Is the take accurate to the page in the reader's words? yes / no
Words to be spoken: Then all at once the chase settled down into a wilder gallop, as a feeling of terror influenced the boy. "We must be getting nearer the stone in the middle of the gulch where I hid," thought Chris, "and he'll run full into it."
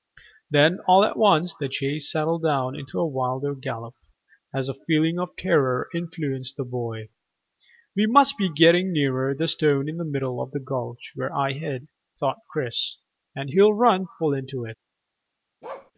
yes